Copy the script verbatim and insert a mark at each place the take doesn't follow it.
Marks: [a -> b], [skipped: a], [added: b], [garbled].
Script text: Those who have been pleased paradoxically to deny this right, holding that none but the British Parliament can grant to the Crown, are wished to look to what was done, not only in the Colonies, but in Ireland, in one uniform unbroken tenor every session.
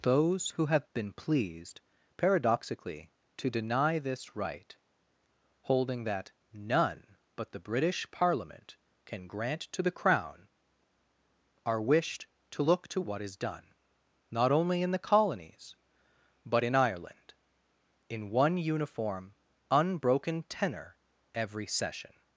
Those who have been pleased paradoxically to deny this right, holding that none but the British Parliament can grant to the Crown, are wished to look to what [was -> is] done, not only in the Colonies, but in Ireland, in one uniform unbroken tenor every session.